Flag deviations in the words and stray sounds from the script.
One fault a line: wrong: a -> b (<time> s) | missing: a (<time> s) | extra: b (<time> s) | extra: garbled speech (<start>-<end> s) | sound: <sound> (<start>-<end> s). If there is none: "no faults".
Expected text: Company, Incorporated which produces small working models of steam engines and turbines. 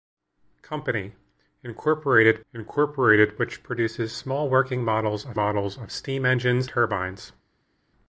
extra: Incorporated (2.5 s)
extra: models of (5.3 s)
missing: and (6.7 s)